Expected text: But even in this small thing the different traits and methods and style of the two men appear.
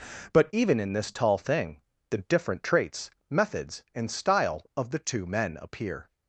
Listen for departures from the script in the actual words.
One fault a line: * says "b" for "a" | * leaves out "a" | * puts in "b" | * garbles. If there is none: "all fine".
* says "tall" for "small"
* leaves out "and"